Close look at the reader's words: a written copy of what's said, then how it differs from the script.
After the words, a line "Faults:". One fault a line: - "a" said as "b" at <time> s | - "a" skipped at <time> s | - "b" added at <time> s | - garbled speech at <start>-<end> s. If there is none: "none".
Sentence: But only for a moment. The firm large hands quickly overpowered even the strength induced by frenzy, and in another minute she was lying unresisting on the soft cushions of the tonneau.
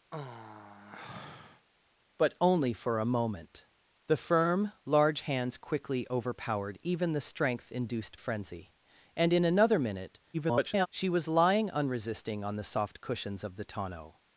But only for a moment. The firm large hands quickly overpowered even the strength induced frenzy, and in another minute [garbled] she was lying unresisting on the soft cushions of the tonneau.
Faults:
- "by" skipped at 8.2 s
- garbled speech at 10.3-10.9 s